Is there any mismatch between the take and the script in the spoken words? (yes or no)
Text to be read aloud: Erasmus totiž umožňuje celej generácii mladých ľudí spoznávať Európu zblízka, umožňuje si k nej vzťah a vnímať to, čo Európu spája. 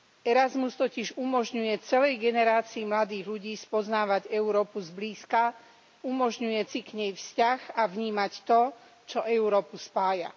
no